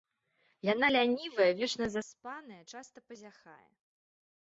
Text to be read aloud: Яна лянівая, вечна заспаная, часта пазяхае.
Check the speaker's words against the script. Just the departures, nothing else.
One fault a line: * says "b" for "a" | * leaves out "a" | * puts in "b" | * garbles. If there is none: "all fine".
all fine